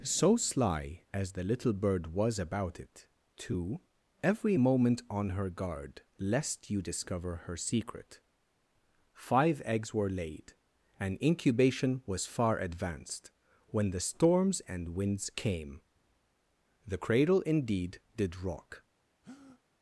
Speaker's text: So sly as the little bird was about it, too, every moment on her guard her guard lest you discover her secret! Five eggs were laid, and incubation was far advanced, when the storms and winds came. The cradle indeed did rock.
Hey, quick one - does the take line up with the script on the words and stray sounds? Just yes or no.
no